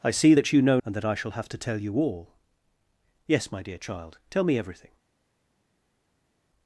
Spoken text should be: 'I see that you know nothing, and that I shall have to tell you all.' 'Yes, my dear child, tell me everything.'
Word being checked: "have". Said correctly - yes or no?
yes